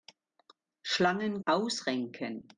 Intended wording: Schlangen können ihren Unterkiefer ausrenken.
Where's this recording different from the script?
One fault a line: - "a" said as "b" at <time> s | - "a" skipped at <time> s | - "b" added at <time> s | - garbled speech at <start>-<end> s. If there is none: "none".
- "können ihren Unterkiefer" skipped at 1.4 s